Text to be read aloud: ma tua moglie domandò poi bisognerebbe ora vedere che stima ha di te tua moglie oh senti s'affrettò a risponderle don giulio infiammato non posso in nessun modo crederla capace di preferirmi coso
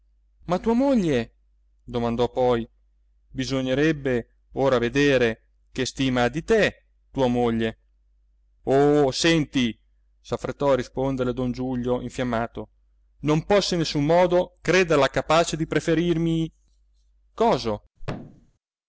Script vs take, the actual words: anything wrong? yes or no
no